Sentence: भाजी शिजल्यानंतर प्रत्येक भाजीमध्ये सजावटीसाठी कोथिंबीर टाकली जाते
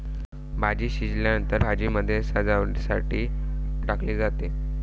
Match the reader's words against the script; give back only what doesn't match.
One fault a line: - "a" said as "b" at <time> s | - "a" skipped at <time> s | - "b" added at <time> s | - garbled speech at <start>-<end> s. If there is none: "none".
- "प्रत्येक" skipped at 1.6 s
- "कोथिंबीर" skipped at 3.3 s